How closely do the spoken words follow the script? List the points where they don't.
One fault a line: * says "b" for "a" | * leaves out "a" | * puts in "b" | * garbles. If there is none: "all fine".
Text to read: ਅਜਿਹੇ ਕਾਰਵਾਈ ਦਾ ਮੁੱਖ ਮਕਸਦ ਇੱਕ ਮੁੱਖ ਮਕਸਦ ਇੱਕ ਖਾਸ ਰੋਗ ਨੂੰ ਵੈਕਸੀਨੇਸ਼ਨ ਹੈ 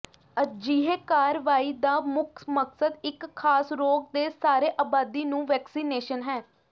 * says "ਖਾਸ ਰੋਗ ਦੇ ਸਾਰੇ ਆਬਾਦੀ" for "ਮੁੱਖ ਮਕਸਦ ਇੱਕ ਖਾਸ ਰੋਗ"